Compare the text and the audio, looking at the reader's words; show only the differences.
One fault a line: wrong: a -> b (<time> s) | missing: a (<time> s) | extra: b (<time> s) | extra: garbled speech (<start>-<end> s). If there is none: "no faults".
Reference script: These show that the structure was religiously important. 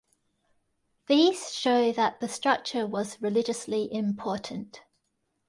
no faults